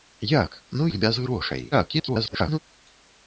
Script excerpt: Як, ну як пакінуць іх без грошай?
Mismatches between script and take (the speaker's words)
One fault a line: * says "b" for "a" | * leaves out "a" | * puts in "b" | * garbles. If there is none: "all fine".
* leaves out "як пакінуць"
* garbles